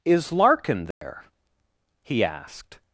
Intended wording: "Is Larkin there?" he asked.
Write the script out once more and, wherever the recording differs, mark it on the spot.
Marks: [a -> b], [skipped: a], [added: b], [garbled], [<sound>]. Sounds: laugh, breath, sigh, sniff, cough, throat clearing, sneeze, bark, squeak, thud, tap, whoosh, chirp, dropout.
"Is Larkin there?" [dropout] he asked.